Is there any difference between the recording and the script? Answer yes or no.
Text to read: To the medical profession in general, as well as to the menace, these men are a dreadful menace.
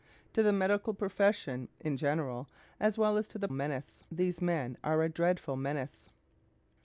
no